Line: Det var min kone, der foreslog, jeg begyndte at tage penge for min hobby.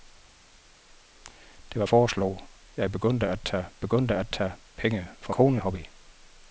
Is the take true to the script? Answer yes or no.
no